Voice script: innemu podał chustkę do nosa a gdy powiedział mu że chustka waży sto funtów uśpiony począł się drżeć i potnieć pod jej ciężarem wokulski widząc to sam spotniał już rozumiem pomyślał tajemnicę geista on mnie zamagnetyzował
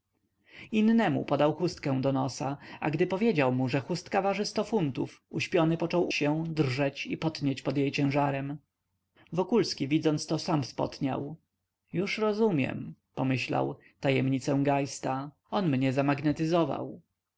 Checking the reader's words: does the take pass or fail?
pass